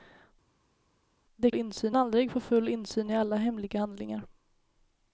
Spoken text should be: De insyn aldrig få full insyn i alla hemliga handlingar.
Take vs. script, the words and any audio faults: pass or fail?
pass